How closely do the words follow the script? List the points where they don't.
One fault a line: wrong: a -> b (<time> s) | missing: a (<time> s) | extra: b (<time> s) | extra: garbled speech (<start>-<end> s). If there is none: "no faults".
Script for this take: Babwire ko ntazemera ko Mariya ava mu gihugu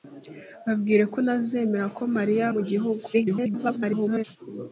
missing: ava (2.5 s)
extra: garbled speech (3.1-4.2 s)